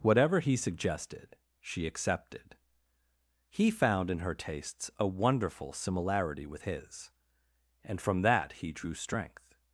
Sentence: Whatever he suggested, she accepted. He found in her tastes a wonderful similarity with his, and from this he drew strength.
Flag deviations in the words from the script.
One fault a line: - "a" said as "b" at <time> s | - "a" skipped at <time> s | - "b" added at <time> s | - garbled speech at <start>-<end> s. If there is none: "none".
- "this" said as "that" at 8.2 s